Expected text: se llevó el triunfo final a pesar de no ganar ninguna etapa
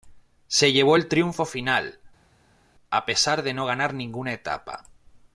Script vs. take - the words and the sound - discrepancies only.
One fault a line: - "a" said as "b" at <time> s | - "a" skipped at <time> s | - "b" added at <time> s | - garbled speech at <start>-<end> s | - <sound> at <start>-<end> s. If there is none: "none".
none